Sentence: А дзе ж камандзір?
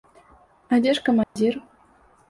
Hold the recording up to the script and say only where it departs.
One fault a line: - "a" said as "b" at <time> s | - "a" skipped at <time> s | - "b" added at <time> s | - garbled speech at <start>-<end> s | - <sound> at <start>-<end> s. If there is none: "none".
- dropout at 1.2-1.4 s